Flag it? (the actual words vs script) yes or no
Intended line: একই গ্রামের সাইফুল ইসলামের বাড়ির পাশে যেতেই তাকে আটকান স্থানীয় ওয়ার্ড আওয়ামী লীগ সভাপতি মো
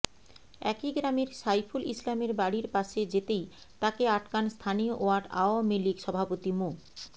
no